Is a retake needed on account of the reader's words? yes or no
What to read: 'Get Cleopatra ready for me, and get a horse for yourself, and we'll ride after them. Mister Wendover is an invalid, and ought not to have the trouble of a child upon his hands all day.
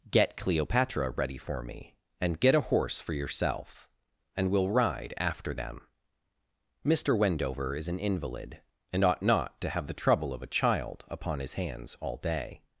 no